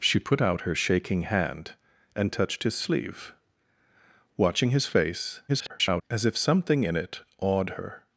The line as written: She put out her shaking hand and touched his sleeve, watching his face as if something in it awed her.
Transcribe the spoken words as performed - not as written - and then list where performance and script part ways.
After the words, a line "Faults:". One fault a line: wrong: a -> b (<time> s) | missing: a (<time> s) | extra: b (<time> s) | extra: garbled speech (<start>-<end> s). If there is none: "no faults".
She put out her shaking hand and touched his sleeve, watching his face [garbled] as if something in it awed her.
Faults:
extra: garbled speech (5.5-6.0 s)